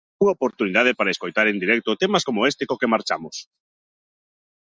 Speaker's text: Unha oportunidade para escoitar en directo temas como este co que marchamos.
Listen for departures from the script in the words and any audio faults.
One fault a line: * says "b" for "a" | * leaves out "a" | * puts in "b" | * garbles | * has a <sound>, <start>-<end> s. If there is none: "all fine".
all fine